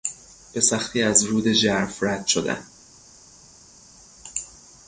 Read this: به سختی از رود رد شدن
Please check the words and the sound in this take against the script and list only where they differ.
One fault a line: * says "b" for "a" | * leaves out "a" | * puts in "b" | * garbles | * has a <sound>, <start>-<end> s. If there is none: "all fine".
* puts in "ژرف"